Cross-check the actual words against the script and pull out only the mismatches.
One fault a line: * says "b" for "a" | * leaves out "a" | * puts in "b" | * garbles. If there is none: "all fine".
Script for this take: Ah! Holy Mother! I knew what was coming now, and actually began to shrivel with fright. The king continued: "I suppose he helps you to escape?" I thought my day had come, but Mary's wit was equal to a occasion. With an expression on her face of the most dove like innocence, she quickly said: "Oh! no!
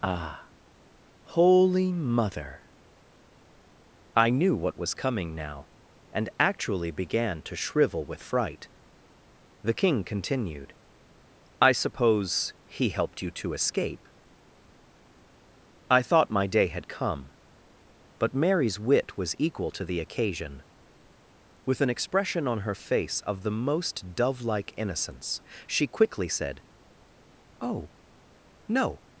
* says "helped" for "helps"
* says "the" for "a"